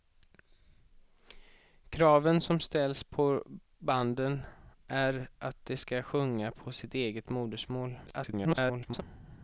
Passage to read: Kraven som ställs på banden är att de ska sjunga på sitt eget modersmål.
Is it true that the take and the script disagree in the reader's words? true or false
true